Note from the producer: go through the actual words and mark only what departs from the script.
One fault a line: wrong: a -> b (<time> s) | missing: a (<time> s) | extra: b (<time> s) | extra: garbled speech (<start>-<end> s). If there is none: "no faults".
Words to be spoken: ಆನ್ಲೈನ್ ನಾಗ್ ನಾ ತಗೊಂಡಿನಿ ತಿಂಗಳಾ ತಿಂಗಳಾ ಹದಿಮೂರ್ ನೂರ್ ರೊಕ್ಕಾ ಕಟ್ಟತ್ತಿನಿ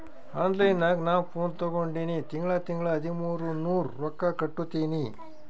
extra: ಫೋನ್ (1.3 s)